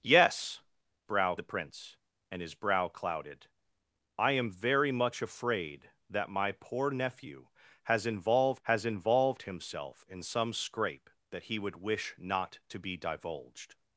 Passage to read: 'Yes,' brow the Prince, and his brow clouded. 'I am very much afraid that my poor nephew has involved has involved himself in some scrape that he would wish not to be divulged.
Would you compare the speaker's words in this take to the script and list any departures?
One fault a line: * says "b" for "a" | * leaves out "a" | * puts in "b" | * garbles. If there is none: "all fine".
all fine